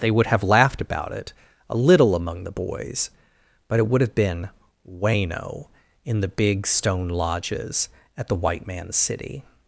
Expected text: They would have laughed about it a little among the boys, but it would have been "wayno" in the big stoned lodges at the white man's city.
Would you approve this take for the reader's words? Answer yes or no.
no